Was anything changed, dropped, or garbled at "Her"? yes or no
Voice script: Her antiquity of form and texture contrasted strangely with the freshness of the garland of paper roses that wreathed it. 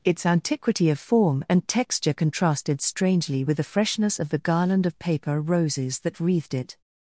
yes